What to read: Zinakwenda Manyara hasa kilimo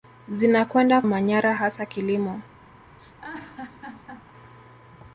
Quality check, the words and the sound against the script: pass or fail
fail